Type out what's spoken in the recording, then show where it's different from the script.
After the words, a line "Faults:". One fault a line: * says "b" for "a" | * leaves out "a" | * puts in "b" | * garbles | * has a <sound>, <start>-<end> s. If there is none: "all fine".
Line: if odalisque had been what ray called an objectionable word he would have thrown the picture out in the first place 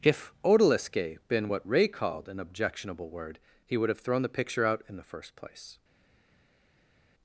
if odalisque been what ray called an objectionable word he would have thrown the picture out in the first place
Faults:
* leaves out "had"